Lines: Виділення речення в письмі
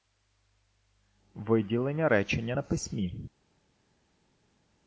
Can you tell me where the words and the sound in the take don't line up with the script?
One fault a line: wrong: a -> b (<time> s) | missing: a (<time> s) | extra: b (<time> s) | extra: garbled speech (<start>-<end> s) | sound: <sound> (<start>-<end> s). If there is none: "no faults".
wrong: в -> на (2.5 s)